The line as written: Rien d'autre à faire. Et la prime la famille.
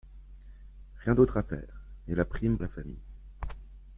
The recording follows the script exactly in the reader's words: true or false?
true